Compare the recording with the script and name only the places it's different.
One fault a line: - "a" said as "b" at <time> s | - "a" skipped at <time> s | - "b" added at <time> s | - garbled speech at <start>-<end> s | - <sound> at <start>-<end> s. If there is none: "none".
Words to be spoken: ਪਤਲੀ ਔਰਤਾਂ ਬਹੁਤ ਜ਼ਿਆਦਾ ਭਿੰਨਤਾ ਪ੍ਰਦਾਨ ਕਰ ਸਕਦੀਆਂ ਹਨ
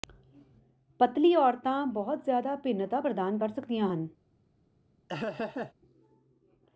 - laugh at 5.1-5.7 s